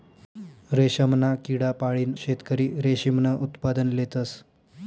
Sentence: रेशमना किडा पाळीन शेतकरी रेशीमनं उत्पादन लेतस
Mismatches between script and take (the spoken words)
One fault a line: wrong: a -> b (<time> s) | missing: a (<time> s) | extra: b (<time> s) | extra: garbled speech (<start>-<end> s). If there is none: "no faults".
no faults